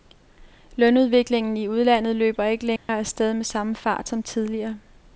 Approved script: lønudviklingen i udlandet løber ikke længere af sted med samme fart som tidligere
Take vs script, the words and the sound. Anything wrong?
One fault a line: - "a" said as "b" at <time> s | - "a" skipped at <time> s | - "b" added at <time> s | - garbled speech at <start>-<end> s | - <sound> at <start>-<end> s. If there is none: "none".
- dropout at 2.8-2.9 s